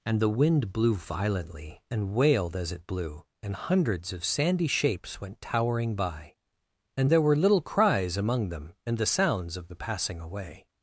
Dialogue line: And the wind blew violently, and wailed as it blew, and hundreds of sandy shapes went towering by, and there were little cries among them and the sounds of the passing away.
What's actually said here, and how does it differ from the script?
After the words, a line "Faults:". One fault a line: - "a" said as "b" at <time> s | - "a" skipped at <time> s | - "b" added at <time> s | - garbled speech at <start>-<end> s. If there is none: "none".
And the wind blew violently, and wailed as it blew, and hundreds of sandy shapes went towering by, and there were little cries among them and the sounds of the passing away.
Faults:
none